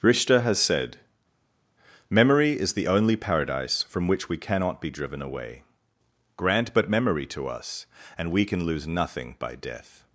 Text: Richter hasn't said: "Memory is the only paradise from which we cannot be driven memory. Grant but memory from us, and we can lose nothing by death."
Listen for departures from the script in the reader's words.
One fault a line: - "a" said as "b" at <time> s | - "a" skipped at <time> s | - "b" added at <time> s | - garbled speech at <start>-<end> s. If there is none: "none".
- "hasn't" said as "has" at 0.4 s
- "memory" said as "away" at 5.2 s
- "from" said as "to" at 7.3 s